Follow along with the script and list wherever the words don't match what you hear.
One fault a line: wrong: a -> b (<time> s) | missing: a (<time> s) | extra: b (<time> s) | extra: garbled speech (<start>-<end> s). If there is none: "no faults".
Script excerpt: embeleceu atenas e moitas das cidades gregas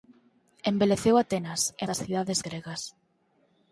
missing: moitas (1.9 s)